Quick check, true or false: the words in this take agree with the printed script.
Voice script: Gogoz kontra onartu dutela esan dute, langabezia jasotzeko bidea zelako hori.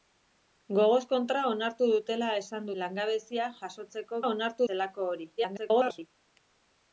false